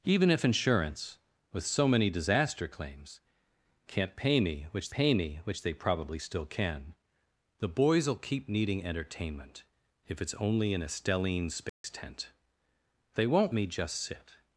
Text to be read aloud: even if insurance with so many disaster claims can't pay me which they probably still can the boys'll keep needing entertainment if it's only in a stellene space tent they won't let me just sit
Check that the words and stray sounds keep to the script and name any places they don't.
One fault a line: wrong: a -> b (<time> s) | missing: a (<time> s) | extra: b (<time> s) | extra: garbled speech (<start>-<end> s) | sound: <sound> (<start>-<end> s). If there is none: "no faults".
extra: pay me which (4.9 s)
sound: dropout (11.7-11.8 s)
missing: let (13.5 s)